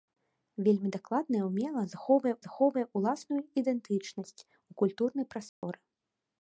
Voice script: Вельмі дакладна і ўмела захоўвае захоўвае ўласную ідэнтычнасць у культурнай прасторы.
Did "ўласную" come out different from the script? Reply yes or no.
no